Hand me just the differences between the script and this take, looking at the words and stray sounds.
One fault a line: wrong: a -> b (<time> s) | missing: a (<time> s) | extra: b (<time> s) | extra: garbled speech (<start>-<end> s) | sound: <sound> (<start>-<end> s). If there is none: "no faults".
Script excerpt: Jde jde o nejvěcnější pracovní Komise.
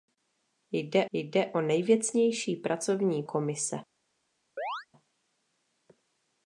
sound: chirp (4.6-4.9 s)